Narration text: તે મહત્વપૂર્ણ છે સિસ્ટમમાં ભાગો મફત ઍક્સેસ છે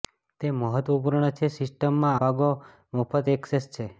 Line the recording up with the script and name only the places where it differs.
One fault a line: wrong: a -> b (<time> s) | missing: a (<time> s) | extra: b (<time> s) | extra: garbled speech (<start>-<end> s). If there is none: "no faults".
no faults